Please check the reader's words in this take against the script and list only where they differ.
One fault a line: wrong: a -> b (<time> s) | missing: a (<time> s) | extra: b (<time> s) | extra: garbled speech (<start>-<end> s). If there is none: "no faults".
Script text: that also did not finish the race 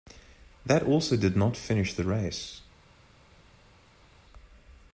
no faults